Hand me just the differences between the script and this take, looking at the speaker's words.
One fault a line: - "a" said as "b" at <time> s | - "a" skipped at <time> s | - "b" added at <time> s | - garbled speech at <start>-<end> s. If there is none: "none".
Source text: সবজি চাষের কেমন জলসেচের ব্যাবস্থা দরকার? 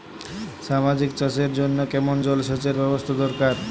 - "জন্য" added at 1.5 s